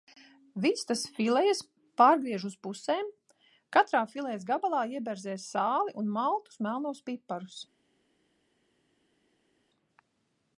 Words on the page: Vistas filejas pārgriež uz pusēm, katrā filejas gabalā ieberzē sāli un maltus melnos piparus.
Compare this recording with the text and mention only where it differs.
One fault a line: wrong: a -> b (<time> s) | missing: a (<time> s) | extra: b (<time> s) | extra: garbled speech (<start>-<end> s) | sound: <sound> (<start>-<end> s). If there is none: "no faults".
no faults